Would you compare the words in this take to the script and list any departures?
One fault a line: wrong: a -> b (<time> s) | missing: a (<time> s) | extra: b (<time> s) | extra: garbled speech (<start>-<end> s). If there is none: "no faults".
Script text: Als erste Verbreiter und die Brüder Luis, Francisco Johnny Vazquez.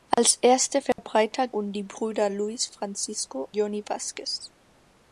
no faults